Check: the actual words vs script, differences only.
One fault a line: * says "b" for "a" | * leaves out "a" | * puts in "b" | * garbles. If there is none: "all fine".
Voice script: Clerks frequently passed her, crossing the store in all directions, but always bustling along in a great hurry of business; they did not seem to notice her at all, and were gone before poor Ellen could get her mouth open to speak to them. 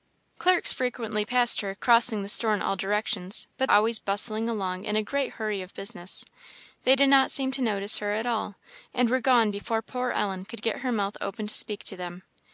all fine